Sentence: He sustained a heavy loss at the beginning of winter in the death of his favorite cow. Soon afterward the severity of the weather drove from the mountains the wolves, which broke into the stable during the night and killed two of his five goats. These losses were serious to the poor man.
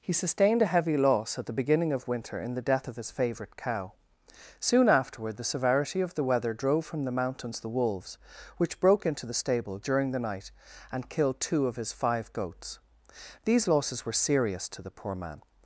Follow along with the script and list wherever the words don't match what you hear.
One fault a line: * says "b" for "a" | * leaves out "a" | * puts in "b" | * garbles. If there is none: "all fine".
all fine